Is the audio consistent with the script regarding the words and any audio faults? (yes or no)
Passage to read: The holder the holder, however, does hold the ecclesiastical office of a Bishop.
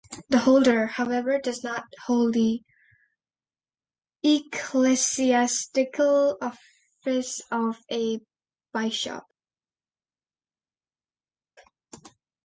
no